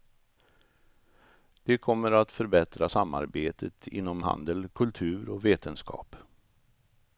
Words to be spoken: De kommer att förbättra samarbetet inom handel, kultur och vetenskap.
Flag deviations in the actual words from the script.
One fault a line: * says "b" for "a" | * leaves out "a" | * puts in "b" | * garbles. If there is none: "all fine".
all fine